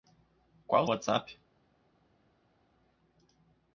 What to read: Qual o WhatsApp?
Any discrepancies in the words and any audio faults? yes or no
no